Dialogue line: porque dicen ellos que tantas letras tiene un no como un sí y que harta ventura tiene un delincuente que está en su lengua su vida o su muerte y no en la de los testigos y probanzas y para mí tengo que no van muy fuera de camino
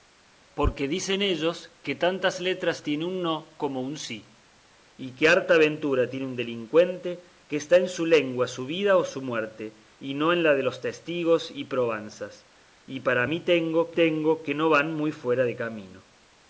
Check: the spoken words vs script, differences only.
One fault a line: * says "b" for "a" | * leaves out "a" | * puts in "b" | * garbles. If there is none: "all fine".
* puts in "tengo"